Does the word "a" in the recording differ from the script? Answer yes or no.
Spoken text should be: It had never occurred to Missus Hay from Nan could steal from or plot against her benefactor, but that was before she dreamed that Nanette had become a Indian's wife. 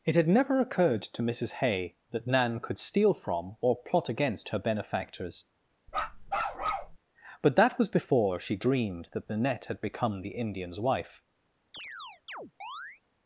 yes